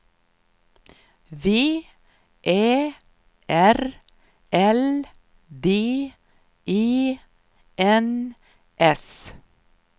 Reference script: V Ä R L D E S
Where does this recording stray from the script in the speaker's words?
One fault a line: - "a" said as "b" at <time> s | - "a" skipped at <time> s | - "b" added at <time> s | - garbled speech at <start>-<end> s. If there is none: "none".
- "N" added at 7.8 s